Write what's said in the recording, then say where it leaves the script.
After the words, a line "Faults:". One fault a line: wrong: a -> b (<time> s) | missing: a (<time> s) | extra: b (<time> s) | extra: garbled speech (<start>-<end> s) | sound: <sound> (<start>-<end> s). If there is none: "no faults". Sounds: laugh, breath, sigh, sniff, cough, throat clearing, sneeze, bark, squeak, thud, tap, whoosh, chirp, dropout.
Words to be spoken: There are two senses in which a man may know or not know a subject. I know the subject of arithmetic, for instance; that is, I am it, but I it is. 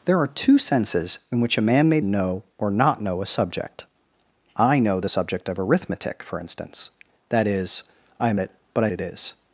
There are two senses in which a man may know or not know a subject. I know the subject of arithmetic, for instance; that is, I am it, but I it is.
Faults:
no faults